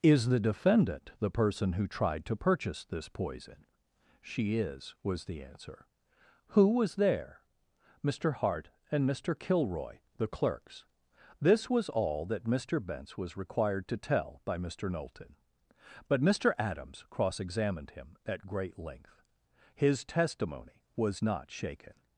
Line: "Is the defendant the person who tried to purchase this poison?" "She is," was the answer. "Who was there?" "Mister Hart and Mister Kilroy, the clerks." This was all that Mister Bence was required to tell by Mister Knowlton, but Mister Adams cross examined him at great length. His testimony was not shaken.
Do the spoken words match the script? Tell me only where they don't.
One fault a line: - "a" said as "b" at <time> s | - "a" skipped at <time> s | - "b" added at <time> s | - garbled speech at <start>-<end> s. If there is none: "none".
none